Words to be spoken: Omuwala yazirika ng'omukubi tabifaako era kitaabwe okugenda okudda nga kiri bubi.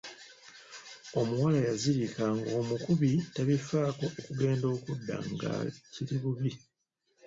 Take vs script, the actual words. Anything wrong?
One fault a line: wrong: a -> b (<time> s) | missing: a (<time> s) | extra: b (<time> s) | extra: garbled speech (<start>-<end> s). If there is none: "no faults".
missing: era kitaabwe (4.1 s)